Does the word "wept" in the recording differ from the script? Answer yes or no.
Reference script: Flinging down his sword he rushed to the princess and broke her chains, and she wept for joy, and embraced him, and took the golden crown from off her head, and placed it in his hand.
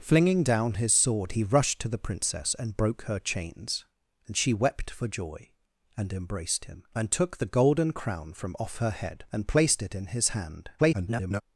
no